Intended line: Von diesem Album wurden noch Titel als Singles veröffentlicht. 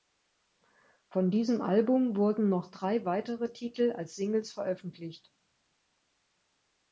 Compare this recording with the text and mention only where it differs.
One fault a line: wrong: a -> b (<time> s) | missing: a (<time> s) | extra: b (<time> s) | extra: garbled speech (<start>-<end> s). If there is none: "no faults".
extra: drei weitere (2.7 s)